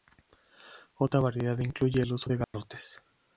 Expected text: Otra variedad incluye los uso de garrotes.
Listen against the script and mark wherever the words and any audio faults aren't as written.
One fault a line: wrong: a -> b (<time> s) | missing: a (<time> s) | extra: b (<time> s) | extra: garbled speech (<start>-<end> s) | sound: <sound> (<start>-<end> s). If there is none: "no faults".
wrong: los -> el (2.0 s)
sound: dropout (2.4-2.5 s)